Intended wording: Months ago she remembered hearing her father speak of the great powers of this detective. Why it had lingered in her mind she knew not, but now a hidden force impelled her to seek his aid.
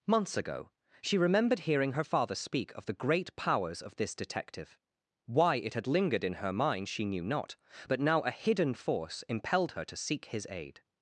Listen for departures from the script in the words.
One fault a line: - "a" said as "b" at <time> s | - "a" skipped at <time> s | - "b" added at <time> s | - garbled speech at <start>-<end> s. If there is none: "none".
none